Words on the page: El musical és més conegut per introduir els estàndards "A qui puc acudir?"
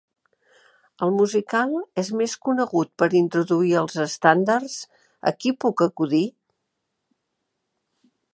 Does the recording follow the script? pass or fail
pass